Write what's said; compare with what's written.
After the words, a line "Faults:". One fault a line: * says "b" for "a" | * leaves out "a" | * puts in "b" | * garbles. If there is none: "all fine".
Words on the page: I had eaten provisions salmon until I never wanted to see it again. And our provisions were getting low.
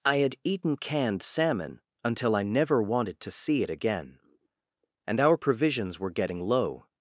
I had eaten canned salmon until I never wanted to see it again. And our provisions were getting low.
Faults:
* says "canned" for "provisions"